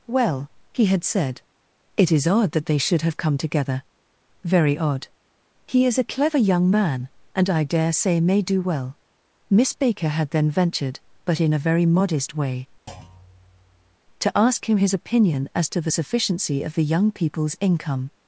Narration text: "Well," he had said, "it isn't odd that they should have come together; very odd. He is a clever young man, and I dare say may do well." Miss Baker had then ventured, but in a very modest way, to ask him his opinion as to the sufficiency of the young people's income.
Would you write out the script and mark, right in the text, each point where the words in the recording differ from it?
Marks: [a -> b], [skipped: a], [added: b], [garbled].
"Well," he had said, "it [isn't -> is] odd that they should have come together; very odd. He is a clever young man, and I dare say may do well." Miss Baker had then ventured, but in a very modest way, to ask him his opinion as to the sufficiency of the young people's income.